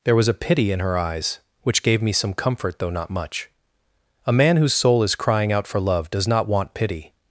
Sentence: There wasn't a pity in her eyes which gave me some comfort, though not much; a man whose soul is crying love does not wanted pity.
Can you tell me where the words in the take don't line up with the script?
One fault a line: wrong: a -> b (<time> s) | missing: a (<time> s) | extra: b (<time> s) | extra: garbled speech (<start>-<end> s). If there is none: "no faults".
wrong: wasn't -> was (0.1 s)
extra: out for (5.5 s)
wrong: wanted -> want (6.5 s)